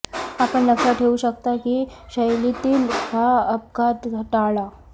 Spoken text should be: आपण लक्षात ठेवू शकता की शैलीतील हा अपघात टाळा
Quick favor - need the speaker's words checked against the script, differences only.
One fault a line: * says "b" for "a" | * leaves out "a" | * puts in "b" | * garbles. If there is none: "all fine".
all fine